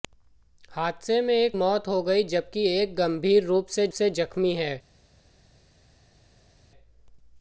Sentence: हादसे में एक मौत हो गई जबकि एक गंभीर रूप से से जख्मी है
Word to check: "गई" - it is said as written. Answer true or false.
true